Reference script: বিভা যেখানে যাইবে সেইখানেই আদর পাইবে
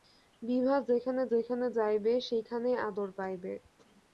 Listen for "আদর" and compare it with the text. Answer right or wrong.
right